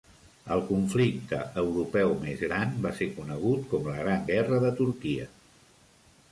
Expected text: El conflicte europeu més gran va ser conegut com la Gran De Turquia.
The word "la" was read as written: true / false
true